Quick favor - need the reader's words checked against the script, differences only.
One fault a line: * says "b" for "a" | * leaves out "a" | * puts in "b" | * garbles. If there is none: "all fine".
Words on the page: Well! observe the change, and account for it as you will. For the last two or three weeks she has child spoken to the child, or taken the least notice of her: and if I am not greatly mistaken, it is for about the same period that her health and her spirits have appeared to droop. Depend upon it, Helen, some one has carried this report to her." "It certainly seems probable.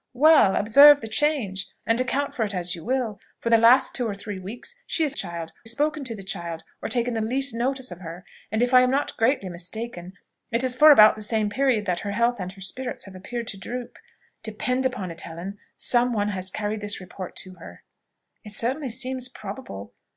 all fine